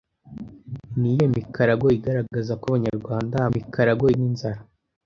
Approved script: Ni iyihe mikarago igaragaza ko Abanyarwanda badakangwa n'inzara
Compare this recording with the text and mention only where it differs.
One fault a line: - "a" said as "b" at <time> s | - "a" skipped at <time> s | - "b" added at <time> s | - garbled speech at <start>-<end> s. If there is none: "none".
- "badakangwa" said as "mikarago" at 3.5 s